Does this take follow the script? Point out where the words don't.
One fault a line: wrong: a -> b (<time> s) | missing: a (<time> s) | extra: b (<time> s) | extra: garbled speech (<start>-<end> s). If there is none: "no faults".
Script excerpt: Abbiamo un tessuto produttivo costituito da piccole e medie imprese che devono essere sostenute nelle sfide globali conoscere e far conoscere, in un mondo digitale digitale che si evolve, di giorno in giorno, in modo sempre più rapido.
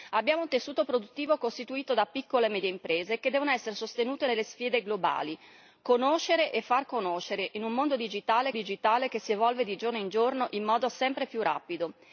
no faults